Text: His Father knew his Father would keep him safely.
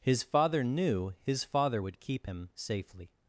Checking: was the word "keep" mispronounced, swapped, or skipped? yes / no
no